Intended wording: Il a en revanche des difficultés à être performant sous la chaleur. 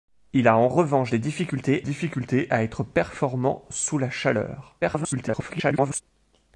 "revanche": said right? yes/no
yes